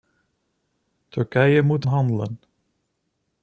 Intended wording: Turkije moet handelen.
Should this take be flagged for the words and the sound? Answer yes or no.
no